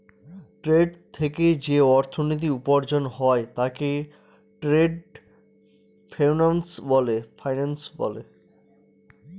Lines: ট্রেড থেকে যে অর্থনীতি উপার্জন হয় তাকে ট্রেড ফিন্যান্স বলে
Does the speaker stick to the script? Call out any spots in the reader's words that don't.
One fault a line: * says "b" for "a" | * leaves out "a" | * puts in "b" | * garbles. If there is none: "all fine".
all fine